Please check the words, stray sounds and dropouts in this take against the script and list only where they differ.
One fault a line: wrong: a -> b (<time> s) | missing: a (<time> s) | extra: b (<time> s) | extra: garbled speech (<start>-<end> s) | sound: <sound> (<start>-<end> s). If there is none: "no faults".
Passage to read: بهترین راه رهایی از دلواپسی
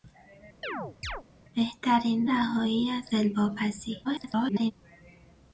sound: chirp (0.6-1.2 s)
missing: راه (2.3 s)
extra: garbled speech (4.0-4.7 s)